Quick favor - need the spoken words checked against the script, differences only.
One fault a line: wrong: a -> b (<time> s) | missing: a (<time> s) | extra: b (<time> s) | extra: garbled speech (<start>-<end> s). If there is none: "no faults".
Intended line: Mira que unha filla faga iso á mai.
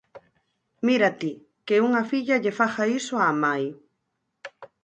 extra: ti (1.2 s)
extra: lle (2.4 s)